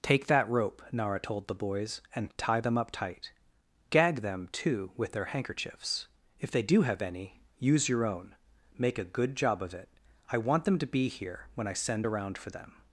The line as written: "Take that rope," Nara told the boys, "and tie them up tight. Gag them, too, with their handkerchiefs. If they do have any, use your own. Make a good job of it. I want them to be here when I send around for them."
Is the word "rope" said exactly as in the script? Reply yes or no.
yes